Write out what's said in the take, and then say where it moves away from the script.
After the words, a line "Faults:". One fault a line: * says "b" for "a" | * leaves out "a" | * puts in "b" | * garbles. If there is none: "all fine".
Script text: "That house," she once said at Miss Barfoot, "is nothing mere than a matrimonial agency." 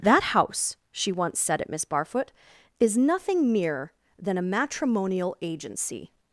"That house," she once said at Miss Barfoot, "is nothing mere than a matrimonial agency."
Faults:
all fine